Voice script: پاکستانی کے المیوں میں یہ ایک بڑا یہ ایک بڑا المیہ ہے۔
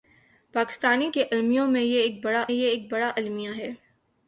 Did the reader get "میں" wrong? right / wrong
right